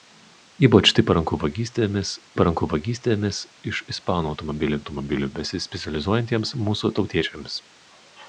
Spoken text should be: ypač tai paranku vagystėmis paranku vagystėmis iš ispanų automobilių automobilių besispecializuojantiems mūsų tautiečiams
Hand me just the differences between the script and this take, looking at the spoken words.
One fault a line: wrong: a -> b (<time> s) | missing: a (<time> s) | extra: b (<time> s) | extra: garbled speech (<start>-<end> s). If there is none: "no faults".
no faults